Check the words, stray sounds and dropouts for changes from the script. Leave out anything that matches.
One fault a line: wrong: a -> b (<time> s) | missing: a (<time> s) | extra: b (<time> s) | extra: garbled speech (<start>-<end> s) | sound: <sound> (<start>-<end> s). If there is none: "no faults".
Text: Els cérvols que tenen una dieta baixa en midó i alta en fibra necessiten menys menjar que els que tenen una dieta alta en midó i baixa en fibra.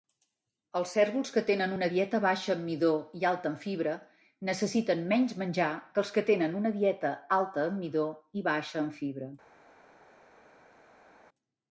no faults